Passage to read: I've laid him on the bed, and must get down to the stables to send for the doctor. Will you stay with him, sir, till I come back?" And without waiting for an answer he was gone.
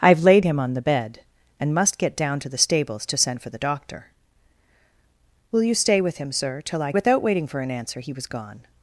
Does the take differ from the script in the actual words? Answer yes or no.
yes